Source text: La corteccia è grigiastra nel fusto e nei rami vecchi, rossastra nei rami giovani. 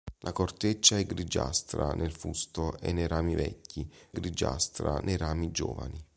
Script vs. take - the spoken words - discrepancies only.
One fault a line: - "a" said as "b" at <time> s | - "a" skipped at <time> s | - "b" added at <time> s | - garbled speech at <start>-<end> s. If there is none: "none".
- "rossastra" said as "grigiastra" at 4.1 s